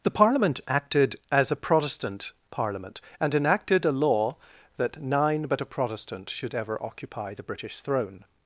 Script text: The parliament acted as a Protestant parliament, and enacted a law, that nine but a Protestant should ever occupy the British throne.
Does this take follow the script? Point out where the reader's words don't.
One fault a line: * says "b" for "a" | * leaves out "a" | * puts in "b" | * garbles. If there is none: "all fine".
all fine